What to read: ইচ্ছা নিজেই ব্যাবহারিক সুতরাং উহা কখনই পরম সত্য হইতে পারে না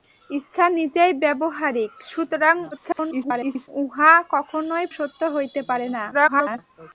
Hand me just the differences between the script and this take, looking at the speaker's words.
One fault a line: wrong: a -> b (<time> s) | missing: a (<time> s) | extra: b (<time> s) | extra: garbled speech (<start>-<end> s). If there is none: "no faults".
extra: garbled speech (2.7-3.7 s)
missing: পরম (4.8 s)
extra: garbled speech (6.1-6.6 s)